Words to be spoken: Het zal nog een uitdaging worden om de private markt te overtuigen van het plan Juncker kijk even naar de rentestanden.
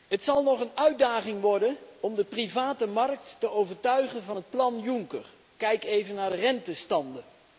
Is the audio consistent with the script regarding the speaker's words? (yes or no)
yes